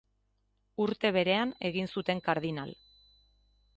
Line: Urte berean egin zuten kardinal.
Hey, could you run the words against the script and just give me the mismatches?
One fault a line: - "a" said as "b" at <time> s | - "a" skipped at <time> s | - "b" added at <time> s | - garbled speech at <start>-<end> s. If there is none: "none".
none